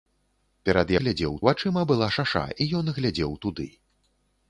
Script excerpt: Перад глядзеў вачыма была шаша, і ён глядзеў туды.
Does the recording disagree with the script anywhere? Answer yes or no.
no